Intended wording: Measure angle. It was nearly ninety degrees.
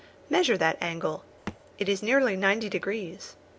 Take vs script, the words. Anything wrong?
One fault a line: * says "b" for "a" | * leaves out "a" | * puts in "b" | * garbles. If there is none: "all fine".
* puts in "that"
* says "is" for "was"